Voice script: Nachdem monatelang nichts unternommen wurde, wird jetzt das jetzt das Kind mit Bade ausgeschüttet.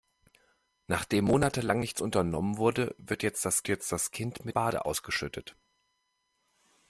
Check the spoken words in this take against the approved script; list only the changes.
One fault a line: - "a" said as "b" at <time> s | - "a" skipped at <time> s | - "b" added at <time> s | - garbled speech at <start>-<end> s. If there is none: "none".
none